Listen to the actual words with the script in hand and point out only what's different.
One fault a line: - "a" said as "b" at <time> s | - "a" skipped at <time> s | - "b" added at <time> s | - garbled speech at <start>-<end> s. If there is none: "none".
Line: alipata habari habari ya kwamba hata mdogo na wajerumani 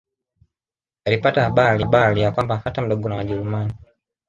none